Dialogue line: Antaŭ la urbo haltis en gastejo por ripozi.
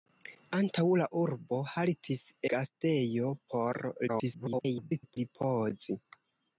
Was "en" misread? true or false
true